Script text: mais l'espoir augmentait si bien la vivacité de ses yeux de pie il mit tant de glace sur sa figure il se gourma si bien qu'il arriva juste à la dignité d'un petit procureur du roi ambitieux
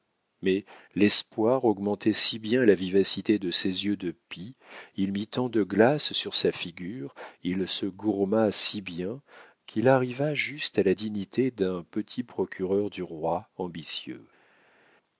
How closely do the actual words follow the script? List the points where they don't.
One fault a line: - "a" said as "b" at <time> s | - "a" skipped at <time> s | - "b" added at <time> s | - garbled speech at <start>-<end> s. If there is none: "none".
none